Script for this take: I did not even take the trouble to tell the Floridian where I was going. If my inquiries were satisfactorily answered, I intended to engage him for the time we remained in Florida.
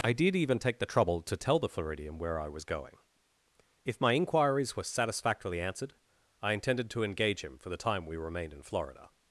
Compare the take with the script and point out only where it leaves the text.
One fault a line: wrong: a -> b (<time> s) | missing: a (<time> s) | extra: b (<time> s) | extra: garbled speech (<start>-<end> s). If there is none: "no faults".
missing: not (0.3 s)